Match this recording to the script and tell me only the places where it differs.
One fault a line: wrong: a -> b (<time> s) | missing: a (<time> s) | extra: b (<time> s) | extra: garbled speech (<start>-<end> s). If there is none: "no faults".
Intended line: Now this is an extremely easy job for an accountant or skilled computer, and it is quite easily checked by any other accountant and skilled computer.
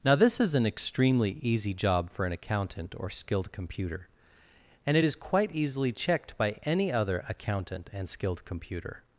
no faults